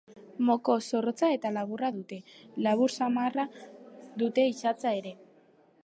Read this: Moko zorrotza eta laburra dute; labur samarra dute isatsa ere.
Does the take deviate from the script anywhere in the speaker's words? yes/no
no